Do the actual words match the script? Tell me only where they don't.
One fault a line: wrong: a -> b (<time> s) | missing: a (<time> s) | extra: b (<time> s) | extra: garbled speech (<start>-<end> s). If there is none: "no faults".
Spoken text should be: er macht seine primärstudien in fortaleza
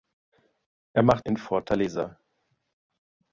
missing: seine primärstudien (1.2 s)